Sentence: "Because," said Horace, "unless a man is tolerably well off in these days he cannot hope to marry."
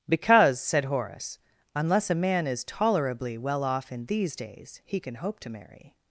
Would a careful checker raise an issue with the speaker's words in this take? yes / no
yes